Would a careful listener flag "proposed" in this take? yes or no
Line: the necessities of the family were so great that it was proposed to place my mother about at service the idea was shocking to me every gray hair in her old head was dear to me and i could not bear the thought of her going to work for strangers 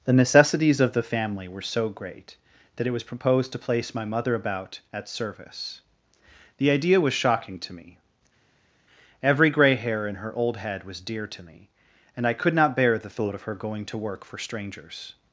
no